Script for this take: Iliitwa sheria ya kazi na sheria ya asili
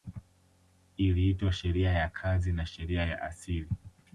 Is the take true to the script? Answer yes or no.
yes